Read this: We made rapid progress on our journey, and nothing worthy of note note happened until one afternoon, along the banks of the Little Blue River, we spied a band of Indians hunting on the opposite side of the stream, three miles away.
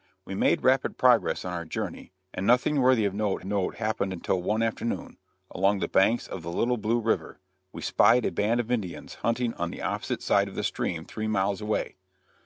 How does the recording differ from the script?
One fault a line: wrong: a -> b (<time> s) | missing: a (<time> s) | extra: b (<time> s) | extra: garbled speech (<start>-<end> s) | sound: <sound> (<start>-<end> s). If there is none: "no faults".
no faults